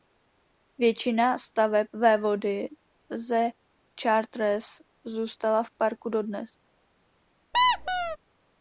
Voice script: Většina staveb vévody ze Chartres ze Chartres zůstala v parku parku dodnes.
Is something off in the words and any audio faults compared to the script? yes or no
yes